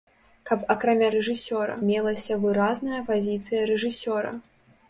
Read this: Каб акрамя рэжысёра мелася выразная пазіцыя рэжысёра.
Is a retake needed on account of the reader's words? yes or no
no